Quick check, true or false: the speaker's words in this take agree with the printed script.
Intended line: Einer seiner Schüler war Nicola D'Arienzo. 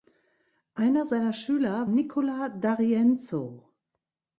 false